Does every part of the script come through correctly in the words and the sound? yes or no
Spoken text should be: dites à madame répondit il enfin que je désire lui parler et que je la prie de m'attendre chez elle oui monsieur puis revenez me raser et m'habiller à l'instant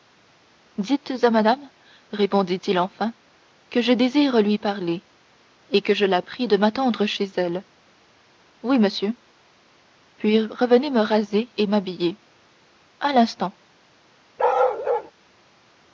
no